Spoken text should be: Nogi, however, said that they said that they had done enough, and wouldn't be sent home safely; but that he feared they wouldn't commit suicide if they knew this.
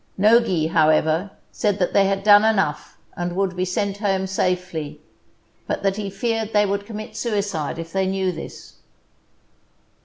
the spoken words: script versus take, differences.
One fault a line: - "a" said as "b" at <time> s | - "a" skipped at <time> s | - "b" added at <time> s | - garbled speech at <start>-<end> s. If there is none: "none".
- "said that they" skipped at 2.0 s
- "wouldn't" said as "would" at 3.4 s
- "wouldn't" said as "would" at 6.7 s